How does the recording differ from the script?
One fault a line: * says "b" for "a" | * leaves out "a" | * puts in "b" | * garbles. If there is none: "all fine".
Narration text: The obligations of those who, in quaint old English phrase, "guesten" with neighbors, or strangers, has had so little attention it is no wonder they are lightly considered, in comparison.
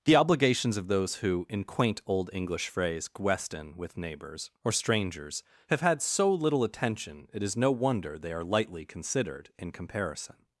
* says "have" for "has"